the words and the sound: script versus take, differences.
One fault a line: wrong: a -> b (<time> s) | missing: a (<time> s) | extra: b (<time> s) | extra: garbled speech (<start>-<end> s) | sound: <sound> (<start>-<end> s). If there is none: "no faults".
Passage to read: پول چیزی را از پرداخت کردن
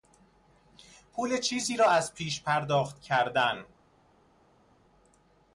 extra: پیش (2.1 s)